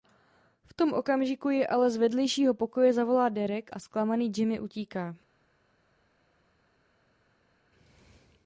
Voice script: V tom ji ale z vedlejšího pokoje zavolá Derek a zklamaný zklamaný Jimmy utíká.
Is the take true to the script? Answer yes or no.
no